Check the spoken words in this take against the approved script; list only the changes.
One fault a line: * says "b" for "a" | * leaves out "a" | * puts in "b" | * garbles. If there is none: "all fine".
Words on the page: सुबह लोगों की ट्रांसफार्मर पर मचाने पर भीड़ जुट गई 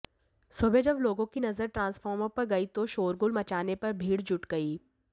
* puts in "जब"
* puts in "नजर"
* puts in "गई तो शोरगुल"